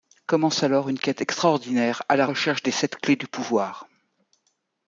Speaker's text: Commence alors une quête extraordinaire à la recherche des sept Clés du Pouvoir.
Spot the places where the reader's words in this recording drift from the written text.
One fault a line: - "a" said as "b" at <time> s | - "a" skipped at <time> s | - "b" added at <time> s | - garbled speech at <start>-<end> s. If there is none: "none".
none